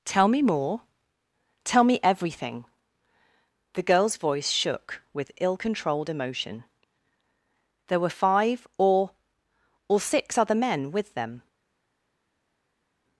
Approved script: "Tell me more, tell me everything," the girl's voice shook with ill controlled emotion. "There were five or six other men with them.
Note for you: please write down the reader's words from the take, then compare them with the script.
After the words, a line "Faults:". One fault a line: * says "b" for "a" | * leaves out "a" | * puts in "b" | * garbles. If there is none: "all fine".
"Tell me more, tell me everything," the girl's voice shook with ill controlled emotion. "There were five or or six other men with them.
Faults:
* puts in "or"